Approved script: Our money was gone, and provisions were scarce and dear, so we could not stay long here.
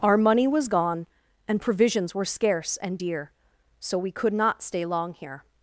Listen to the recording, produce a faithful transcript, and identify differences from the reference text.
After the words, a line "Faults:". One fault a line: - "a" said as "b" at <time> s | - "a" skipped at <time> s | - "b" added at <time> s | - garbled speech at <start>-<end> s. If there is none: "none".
Our money was gone, and provisions were scarce and dear, so we could not stay long here.
Faults:
none